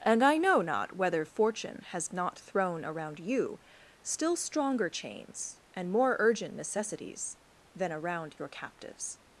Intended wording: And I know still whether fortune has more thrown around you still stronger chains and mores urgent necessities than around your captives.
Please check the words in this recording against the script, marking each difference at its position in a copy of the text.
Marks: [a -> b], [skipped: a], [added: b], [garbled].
And I know [still -> not] whether fortune has [more -> not] thrown around you still stronger chains and [mores -> more] urgent necessities than around your captives.